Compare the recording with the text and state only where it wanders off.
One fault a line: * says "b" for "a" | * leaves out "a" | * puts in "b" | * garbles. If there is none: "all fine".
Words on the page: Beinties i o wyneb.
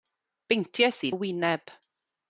all fine